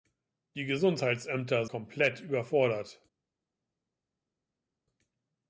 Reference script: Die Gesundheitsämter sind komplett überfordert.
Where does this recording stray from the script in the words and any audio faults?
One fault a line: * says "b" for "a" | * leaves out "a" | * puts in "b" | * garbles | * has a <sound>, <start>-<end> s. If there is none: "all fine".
* leaves out "sind"